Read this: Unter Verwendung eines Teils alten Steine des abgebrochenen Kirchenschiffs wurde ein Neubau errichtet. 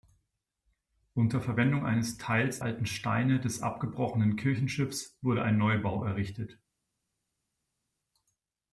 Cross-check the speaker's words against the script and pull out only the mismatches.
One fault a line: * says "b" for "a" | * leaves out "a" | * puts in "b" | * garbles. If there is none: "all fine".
all fine